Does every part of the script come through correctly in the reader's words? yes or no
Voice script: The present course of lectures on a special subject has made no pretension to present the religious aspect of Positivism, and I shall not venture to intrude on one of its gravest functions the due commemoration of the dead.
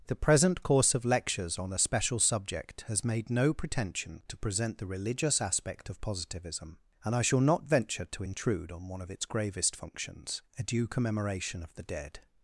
no